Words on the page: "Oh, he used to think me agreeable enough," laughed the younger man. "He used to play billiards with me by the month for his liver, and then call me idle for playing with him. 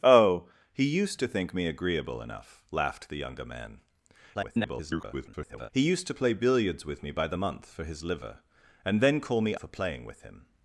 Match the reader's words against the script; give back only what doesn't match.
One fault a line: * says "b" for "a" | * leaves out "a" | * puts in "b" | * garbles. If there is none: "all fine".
* garbles
* leaves out "idle"